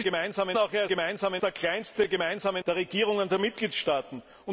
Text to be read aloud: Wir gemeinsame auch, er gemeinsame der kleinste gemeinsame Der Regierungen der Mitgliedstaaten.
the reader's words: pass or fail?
pass